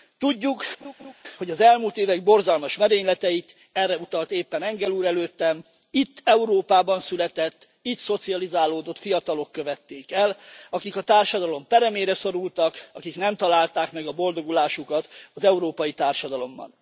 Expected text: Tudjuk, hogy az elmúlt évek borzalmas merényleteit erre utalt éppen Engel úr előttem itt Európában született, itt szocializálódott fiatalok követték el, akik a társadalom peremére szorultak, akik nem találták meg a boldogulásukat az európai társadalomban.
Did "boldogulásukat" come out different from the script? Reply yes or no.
no